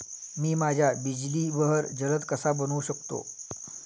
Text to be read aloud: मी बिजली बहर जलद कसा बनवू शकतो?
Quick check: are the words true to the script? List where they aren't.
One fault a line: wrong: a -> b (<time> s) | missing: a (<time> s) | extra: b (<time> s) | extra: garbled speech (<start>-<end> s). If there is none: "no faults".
extra: माझ्या (0.6 s)